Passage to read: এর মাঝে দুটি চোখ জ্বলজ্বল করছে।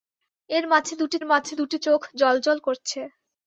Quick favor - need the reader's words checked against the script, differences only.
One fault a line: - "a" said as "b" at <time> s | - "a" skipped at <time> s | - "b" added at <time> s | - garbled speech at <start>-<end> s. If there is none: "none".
- "মাঝে দুটি" added at 1.3 s